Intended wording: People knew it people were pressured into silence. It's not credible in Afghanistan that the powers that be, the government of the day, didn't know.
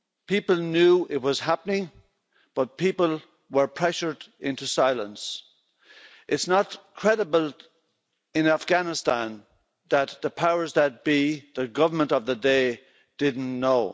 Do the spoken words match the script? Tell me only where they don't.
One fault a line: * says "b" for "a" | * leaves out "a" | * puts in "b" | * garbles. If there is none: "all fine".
* puts in "was happening but"